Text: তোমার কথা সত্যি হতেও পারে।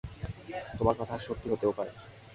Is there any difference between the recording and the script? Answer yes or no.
no